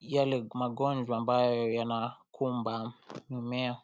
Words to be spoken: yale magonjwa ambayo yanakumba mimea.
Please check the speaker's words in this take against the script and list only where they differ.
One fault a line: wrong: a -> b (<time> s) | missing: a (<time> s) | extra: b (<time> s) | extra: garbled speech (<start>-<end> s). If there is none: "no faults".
no faults